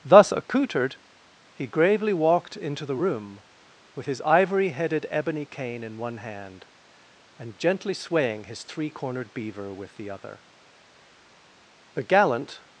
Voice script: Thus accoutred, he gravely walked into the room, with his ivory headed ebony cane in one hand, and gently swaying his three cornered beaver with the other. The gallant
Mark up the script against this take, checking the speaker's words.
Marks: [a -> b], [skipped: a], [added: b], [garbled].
Thus accoutred, he gravely walked into the room, with his ivory headed ebony cane in one hand, and gently swaying his three cornered beaver with the other. The gallant